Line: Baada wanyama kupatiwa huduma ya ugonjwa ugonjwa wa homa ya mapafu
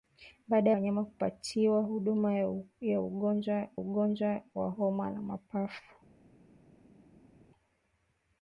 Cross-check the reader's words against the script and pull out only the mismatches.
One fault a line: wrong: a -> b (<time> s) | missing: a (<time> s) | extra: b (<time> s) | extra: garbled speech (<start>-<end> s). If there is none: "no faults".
no faults